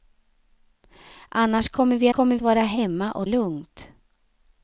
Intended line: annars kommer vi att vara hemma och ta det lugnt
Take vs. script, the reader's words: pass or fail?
fail